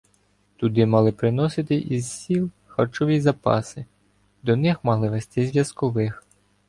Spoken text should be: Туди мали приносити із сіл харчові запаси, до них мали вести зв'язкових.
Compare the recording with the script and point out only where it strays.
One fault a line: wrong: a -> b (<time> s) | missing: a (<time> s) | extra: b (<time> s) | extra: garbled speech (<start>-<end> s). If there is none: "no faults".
no faults